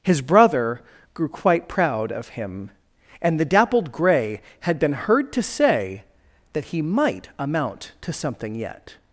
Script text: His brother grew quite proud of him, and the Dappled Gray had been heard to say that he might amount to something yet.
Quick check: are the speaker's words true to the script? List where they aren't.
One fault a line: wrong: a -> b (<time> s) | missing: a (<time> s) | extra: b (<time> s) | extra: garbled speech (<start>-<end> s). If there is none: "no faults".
no faults